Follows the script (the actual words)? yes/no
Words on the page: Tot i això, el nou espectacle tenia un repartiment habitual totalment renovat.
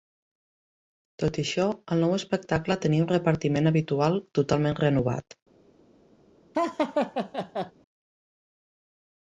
yes